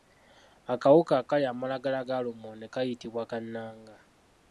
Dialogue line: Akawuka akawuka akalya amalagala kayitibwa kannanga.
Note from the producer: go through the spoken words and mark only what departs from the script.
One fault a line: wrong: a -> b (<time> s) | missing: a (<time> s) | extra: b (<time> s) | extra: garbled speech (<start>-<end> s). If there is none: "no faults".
missing: akawuka (1.1 s)
extra: ga lumonde (2.1 s)